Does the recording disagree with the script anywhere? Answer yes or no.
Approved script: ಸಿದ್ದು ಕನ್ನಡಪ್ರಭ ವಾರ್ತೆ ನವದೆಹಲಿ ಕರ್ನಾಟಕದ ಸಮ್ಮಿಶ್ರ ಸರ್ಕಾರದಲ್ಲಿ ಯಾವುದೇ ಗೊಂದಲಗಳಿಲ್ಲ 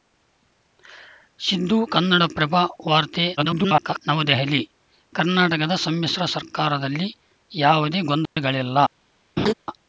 yes